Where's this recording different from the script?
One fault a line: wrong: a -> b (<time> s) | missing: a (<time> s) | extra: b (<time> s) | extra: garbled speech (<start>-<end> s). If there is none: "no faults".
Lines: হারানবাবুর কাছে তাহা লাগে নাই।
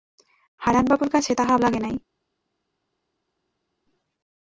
no faults